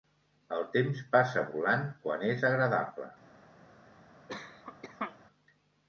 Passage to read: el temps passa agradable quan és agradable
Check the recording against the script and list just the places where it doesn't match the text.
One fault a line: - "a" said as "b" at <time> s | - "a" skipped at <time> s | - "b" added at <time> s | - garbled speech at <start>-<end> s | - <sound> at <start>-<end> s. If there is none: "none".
- "agradable" said as "volant" at 1.6 s
- cough at 4.3-5.2 s